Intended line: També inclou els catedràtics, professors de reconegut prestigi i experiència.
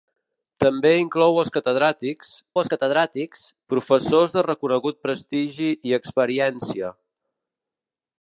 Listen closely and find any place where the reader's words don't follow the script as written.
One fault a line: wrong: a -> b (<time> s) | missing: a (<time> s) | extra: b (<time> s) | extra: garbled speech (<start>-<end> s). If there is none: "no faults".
extra: els catedràtics (2.6 s)